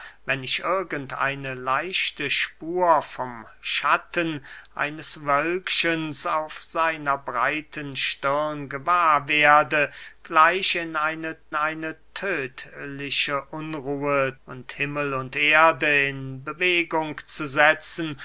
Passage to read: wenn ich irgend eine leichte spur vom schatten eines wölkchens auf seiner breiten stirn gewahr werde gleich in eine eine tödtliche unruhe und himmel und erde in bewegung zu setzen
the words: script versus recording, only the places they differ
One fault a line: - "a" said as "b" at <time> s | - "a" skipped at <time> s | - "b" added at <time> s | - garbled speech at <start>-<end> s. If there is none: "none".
none